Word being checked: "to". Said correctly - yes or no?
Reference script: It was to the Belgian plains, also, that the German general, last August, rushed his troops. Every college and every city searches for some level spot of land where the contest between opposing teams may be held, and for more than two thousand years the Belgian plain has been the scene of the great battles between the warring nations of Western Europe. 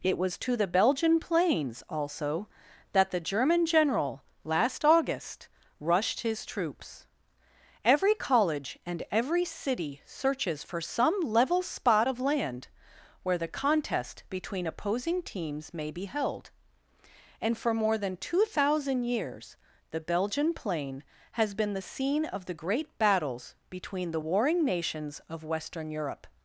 yes